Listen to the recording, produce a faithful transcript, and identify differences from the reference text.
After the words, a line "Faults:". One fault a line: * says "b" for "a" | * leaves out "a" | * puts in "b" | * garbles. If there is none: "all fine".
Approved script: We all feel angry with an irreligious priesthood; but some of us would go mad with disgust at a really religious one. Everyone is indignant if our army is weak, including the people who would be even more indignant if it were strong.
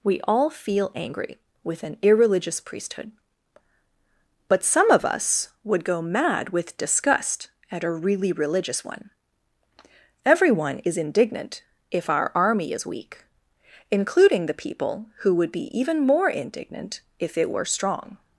We all feel angry with an irreligious priesthood; but some of us would go mad with disgust at a really religious one. Everyone is indignant if our army is weak, including the people who would be even more indignant if it were strong.
Faults:
all fine